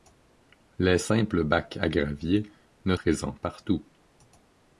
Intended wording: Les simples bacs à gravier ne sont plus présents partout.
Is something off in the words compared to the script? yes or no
yes